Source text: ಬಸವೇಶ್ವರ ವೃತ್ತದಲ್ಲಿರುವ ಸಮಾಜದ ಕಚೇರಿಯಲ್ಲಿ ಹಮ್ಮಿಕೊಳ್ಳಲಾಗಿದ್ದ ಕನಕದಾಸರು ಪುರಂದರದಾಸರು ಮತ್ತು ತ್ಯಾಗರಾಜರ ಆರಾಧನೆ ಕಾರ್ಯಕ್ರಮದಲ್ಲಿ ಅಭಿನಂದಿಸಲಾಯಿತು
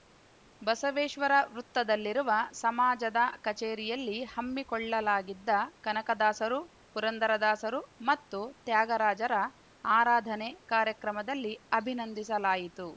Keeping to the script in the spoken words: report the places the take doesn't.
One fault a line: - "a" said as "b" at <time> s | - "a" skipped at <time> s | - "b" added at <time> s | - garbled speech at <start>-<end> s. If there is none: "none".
none